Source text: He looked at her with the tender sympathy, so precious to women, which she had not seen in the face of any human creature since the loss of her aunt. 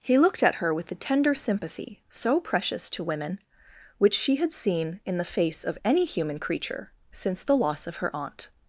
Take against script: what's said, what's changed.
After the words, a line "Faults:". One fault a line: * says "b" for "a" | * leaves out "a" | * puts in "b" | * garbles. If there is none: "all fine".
He looked at her with the tender sympathy, so precious to women, which she had seen in the face of any human creature since the loss of her aunt.
Faults:
* leaves out "not"